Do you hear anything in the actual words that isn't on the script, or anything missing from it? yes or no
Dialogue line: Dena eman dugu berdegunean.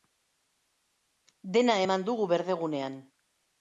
no